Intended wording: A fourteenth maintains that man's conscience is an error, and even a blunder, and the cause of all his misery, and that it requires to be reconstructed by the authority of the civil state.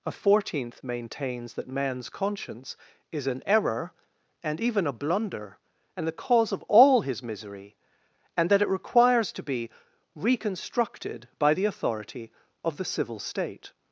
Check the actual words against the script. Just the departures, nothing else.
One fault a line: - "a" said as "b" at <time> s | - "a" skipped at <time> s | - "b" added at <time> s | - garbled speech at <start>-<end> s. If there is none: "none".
none